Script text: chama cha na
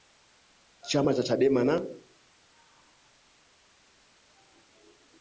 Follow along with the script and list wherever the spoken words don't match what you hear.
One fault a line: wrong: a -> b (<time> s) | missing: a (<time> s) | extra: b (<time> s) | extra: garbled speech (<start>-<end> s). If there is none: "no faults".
extra: chadema (1.2 s)